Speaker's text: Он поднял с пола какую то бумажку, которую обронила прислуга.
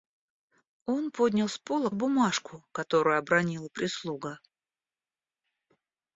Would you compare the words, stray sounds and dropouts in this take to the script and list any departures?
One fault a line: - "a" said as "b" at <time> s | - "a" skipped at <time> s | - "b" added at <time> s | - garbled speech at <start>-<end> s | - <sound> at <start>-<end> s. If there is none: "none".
- "какую то" skipped at 1.9 s